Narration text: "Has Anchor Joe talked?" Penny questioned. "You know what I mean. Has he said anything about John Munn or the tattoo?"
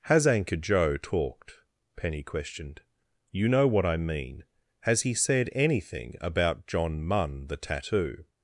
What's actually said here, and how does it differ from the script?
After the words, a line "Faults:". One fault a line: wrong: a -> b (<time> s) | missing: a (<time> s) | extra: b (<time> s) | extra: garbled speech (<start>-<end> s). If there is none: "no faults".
"Has Anchor Joe talked?" Penny questioned. "You know what I mean. Has he said anything about John Munn the tattoo?"
Faults:
missing: or (7.5 s)